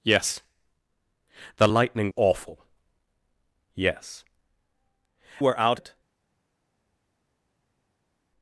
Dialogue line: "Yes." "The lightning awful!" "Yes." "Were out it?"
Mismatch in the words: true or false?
false